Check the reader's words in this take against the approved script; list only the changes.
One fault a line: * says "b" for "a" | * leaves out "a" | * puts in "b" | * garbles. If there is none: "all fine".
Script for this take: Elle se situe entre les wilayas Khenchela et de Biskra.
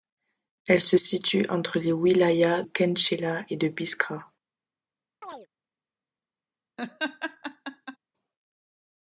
all fine